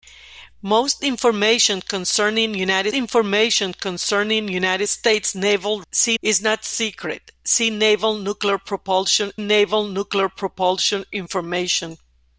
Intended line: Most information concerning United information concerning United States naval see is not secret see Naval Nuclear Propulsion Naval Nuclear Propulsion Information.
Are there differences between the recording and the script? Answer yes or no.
no